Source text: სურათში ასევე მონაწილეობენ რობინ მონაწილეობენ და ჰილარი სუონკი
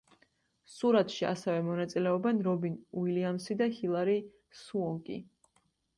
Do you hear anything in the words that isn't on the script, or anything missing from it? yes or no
yes